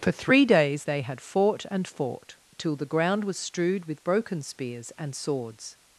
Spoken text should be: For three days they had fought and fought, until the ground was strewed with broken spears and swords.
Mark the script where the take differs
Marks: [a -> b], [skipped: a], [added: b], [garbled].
For three days they had fought and fought, [until -> till] the ground was strewed with broken spears and swords.